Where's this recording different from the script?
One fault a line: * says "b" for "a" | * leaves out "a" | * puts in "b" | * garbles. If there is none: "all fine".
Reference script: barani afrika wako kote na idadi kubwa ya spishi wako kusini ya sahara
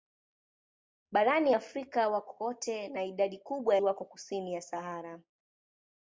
* leaves out "ya spishi"